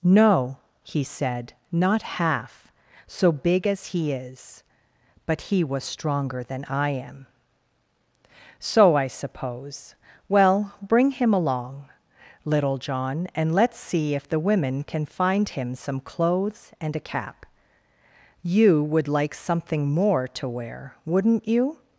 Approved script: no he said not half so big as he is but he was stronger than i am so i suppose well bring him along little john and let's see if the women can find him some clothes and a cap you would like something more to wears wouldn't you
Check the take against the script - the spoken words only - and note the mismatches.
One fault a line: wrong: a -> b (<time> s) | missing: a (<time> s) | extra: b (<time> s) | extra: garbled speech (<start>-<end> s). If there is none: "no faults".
wrong: wears -> wear (20.5 s)